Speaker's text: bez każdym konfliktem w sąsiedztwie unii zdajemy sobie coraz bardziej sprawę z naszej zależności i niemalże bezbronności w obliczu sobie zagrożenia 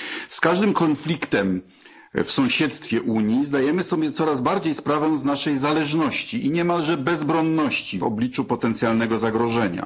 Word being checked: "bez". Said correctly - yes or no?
no